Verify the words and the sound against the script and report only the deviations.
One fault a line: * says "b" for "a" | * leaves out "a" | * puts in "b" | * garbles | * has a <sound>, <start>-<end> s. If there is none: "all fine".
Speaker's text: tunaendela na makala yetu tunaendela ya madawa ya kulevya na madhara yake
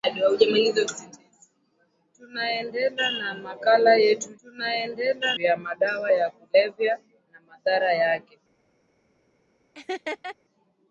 * has a laugh, 9.7-10.4 s